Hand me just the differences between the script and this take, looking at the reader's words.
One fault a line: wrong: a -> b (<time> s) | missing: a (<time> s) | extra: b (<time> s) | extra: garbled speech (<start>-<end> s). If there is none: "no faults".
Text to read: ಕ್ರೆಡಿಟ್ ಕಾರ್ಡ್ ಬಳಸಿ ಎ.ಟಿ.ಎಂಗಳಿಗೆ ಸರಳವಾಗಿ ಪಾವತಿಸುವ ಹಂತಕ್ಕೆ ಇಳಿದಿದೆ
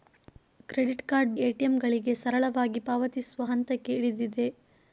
missing: ಬಳಸಿ (1.4 s)